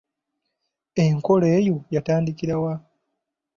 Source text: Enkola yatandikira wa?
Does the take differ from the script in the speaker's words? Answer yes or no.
yes